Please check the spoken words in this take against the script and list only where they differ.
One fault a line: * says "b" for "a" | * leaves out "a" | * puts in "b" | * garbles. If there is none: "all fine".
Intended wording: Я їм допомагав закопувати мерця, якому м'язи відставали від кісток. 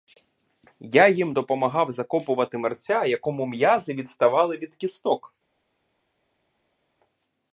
all fine